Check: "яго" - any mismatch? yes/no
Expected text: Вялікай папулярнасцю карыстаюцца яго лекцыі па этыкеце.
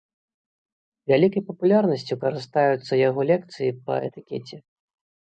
no